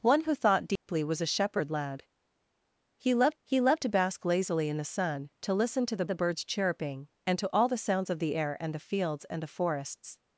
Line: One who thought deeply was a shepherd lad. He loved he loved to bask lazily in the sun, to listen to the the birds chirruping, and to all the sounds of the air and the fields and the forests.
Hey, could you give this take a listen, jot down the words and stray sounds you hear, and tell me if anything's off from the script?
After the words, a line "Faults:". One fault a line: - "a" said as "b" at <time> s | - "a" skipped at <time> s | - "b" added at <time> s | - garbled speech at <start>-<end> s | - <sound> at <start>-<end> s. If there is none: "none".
One who thought deeply was a shepherd lad. He loved he loved to bask lazily in the sun, to listen to the the birds chirruping, and to all the sounds of the air and the fields and the forests.
Faults:
- dropout at 0.8-0.9 s